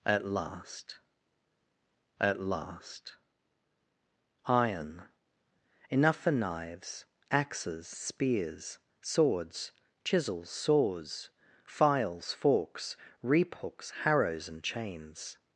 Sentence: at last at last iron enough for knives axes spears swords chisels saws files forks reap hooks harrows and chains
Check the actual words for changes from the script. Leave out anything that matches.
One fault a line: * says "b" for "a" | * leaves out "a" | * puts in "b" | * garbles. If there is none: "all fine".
all fine